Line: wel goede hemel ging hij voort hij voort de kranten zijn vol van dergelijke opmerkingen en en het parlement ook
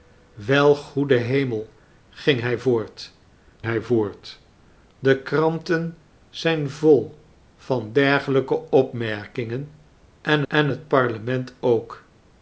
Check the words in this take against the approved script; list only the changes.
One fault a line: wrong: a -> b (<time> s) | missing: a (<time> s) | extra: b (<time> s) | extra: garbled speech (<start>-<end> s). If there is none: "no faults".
no faults